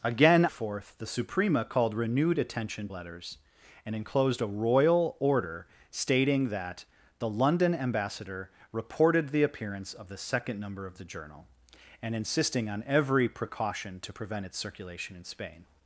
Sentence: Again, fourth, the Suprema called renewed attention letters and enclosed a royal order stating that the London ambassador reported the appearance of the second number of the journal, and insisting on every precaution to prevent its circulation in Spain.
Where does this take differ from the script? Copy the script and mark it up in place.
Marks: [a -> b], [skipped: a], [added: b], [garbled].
Again, fourth, the Suprema called renewed attention letters and enclosed a royal order stating that the London ambassador reported the appearance of the second number of the journal, and insisting on every precaution to prevent its circulation in Spain.